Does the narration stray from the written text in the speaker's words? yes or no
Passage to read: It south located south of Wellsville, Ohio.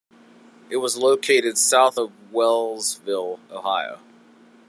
yes